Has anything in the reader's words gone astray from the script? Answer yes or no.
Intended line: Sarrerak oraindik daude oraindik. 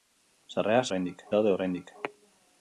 no